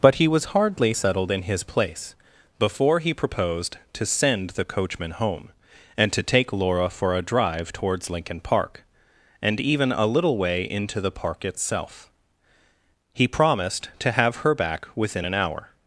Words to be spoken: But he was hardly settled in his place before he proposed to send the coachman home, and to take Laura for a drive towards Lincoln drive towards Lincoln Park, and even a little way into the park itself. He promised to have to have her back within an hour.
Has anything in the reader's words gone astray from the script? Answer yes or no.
yes